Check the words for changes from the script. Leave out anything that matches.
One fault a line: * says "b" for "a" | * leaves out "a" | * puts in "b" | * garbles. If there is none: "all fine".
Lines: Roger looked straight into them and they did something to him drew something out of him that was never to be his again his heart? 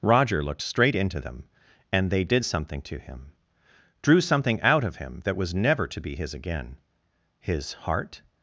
all fine